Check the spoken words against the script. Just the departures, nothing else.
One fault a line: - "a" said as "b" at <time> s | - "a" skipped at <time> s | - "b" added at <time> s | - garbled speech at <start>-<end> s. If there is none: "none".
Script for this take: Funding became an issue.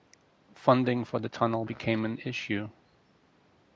- "for the tunnel" added at 1.1 s